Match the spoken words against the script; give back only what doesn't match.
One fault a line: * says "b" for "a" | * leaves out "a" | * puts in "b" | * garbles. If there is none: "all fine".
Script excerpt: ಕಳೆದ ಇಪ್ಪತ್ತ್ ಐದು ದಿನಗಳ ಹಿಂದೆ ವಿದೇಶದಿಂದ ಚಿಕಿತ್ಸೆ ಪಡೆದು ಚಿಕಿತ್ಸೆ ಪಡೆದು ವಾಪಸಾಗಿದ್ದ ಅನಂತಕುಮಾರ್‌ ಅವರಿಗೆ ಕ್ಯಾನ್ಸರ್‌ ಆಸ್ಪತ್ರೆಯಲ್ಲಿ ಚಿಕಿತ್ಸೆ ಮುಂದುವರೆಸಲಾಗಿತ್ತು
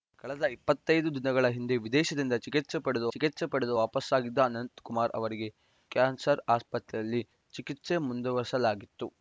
all fine